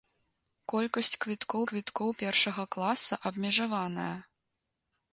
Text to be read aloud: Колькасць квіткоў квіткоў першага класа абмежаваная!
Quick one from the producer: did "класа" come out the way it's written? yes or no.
yes